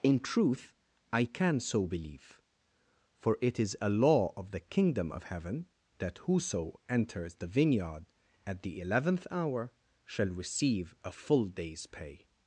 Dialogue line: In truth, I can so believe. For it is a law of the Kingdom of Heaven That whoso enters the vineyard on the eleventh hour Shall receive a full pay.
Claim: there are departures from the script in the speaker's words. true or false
true